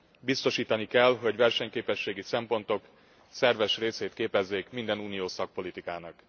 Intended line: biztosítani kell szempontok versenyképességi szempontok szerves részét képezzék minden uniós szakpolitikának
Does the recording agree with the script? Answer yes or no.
no